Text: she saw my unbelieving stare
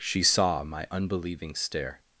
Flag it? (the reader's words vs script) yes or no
no